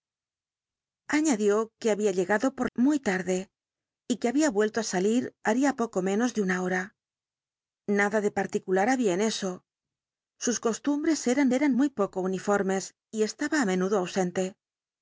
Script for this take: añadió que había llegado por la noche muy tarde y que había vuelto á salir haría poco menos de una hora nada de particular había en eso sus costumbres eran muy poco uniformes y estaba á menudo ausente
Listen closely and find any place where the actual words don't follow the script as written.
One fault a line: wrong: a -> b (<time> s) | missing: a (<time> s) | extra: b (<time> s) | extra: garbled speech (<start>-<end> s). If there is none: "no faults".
missing: la noche (2.7 s)
extra: eran (11.5 s)